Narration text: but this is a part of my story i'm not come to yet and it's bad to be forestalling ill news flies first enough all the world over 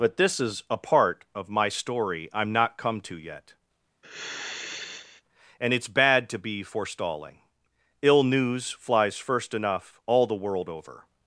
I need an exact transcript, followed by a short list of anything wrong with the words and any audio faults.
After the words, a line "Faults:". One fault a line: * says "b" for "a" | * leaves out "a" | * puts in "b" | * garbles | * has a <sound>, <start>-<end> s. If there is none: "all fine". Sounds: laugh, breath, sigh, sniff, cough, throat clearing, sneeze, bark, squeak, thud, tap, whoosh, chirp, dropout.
but this is a part of my story i'm not come to yet and it's bad to be forestalling ill news flies first enough all the world over
Faults:
* has a sigh, 4.0-5.2 s